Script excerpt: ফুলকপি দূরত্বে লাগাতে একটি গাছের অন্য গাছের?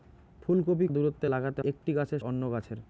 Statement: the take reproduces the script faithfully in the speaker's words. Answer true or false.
true